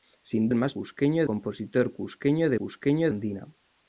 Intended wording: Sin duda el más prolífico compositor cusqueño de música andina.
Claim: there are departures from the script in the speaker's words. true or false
true